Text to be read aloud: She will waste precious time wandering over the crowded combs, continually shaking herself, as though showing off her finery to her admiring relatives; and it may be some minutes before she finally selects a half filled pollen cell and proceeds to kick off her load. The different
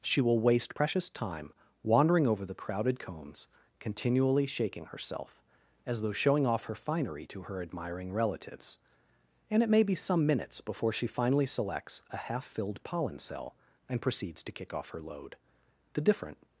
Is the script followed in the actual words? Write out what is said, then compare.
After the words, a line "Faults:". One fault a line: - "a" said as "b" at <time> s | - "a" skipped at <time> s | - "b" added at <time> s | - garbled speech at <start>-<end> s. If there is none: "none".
She will waste precious time wandering over the crowded combs, continually shaking herself, as though showing off her finery to her admiring relatives; and it may be some minutes before she finally selects a half filled pollen cell and proceeds to kick off her load. The different
Faults:
none